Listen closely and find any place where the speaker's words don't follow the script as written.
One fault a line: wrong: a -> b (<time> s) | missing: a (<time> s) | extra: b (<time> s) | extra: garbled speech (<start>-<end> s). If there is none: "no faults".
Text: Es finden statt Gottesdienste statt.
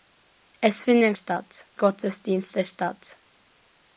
no faults